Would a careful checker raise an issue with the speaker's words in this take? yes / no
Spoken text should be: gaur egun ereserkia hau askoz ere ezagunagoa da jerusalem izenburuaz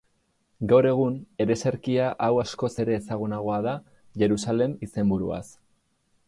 no